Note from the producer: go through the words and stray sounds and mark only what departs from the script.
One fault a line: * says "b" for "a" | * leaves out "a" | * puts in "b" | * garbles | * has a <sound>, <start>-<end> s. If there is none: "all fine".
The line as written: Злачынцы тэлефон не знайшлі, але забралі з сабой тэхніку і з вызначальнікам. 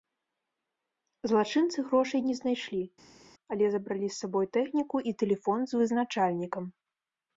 * says "грошай" for "тэлефон"
* puts in "тэлефон"